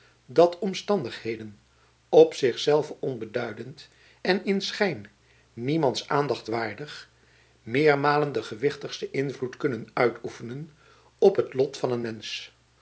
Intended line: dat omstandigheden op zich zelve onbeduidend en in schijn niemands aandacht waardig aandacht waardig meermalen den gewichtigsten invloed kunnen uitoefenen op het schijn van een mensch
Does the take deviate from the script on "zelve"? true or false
false